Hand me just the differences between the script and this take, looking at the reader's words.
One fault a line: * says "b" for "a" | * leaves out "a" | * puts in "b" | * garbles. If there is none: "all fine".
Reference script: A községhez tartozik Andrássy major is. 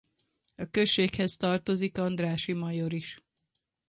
all fine